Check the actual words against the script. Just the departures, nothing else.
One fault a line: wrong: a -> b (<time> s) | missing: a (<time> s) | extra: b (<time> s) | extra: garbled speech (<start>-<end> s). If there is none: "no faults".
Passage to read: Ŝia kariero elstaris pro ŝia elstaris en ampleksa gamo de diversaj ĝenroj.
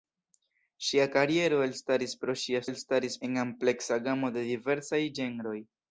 no faults